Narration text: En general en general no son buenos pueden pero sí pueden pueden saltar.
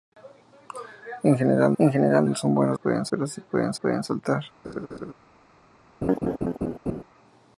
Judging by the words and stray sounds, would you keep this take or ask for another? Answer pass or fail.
fail